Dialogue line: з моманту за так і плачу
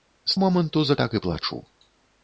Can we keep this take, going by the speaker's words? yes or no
yes